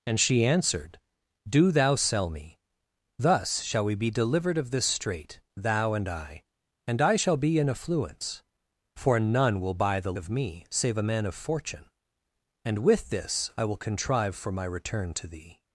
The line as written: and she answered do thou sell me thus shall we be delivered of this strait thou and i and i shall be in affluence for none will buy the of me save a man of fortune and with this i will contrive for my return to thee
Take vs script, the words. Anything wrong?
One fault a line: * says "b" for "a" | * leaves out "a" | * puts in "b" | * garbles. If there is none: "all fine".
all fine